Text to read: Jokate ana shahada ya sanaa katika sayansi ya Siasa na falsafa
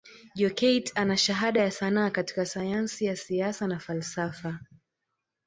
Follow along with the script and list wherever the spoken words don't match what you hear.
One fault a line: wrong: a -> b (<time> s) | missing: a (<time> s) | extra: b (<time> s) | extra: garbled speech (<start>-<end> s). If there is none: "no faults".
no faults